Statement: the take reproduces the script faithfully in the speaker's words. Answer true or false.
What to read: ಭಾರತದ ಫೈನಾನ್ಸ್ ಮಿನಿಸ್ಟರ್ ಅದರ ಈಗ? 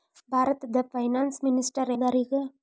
true